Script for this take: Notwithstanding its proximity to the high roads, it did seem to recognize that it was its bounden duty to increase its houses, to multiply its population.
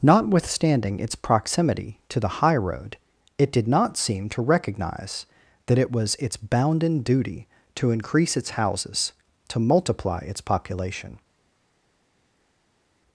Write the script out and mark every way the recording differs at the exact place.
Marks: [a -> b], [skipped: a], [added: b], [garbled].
Notwithstanding its proximity to the high [roads, -> road] it did [added: not] seem to recognize that it was its bounden duty to increase its houses, to multiply its population.